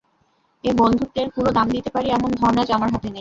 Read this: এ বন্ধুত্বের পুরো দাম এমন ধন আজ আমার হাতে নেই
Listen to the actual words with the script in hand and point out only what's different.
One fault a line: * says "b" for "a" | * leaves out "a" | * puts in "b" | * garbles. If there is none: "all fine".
* puts in "দিতে পারি"